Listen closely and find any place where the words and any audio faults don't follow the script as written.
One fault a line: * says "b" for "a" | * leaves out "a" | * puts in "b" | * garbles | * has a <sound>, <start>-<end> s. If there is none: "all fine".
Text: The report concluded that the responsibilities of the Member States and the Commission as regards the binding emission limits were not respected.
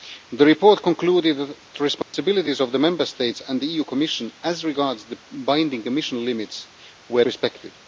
* leaves out "that"
* has a dropout, 2.0-2.1 s
* leaves out "not"